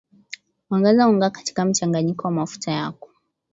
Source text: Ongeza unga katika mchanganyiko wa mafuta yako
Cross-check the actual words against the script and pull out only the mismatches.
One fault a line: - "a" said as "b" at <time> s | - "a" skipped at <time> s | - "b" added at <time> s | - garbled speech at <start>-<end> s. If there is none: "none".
none